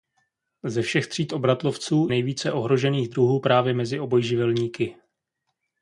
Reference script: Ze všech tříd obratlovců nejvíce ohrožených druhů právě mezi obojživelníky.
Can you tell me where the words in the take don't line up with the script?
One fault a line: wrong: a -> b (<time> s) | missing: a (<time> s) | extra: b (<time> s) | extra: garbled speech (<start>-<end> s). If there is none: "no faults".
no faults